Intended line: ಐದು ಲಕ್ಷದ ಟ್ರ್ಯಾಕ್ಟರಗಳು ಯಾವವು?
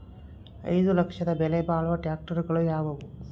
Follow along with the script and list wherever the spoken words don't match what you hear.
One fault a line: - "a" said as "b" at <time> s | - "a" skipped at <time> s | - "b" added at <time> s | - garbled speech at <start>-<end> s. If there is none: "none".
- "ಬೆಲೆ ಬಾಳುವ" added at 1.3 s